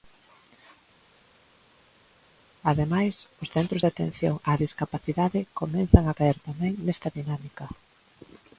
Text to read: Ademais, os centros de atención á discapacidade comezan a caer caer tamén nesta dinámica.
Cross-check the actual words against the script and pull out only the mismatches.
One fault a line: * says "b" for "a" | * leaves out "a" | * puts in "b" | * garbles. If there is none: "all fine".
* leaves out "caer"